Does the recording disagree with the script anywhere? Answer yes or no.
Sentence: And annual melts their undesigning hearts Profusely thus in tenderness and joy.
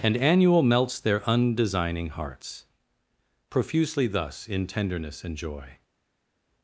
no